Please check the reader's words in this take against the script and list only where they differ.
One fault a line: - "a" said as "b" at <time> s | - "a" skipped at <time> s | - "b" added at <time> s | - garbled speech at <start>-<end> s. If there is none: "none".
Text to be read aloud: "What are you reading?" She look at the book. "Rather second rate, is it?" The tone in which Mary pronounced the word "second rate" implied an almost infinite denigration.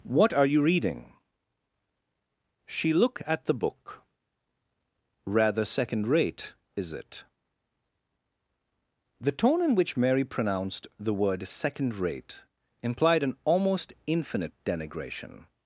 none